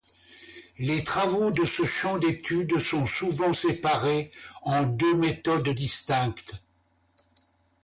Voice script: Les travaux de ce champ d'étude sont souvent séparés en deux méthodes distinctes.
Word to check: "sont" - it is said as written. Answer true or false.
true